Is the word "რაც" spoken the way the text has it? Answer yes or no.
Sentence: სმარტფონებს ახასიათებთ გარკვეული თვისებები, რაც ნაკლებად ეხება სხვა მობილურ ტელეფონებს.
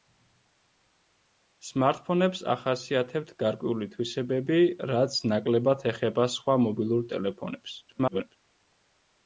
yes